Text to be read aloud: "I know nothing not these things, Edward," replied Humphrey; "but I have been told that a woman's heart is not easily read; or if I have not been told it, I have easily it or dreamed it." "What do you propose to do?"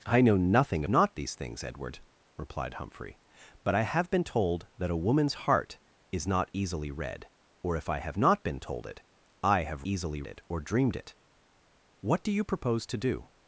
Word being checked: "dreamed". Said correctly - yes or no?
yes